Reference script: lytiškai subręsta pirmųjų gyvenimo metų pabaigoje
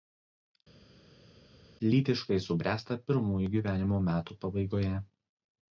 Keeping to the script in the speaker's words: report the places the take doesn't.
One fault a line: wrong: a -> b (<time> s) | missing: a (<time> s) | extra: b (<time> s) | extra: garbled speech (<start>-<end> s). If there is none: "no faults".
no faults